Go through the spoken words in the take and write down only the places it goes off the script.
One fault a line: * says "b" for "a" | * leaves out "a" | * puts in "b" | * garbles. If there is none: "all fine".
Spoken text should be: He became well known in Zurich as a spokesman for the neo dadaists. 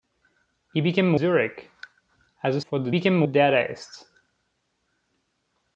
* leaves out "well known in"
* leaves out "spokesman"
* says "became" for "neo"